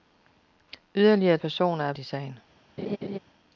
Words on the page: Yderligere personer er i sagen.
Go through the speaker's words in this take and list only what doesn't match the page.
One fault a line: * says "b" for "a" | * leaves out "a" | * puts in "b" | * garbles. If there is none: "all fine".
all fine